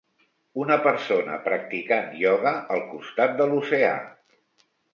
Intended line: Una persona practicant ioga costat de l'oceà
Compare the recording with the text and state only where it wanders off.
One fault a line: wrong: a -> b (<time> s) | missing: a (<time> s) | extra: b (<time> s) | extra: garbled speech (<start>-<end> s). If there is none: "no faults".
extra: al (2.8 s)